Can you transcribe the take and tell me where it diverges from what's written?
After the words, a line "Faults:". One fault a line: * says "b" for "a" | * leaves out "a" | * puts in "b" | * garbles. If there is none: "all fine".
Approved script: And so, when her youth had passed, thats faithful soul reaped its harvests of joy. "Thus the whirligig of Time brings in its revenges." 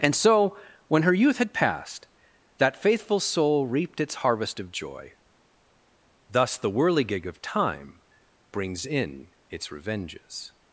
And so, when her youth had passed, that faithful soul reaped its harvest of joy. "Thus the whirligig of Time brings in its revenges."
Faults:
* says "that" for "thats"
* says "harvest" for "harvests"